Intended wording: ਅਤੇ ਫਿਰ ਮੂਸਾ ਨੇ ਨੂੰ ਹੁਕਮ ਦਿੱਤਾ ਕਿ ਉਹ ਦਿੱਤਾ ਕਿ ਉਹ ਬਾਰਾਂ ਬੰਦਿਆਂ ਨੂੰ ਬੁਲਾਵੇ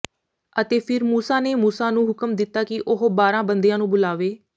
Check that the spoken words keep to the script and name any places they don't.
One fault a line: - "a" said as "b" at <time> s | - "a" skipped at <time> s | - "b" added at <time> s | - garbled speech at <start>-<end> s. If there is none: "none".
- "ਮੂਸਾ" added at 1.6 s
- "ਦਿੱਤਾ ਕਿ ਉਹ" skipped at 3.1 s